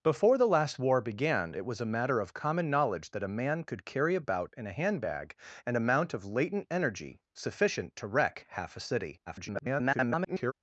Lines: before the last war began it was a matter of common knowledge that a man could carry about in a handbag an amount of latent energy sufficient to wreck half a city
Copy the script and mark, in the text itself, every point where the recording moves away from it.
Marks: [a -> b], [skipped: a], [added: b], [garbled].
before the last war began it was a matter of common knowledge that a man could carry about in a handbag an amount of latent energy sufficient to wreck half a city [garbled]